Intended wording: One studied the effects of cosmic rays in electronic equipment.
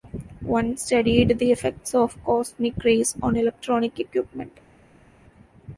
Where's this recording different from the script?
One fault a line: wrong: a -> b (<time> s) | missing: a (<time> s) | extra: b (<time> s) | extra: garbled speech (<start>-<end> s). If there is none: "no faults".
wrong: in -> on (3.2 s)